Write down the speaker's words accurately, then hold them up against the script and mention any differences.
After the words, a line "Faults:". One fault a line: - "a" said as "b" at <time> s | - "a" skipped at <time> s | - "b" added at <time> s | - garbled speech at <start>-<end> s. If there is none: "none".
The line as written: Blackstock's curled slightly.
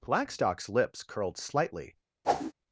Blackstock's lips curled slightly.
Faults:
- "lips" added at 0.7 s